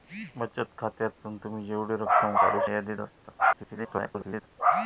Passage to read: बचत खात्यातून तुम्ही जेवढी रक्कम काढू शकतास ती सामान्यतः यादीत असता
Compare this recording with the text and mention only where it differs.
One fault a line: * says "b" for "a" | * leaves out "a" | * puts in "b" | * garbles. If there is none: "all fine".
* leaves out "शकतास ती सामान्यतः"
* garbles